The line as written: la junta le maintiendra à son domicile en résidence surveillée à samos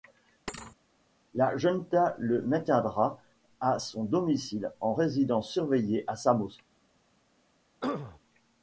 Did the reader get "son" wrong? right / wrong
right